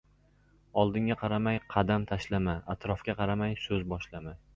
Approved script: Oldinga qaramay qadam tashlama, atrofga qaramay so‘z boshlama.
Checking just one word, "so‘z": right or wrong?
right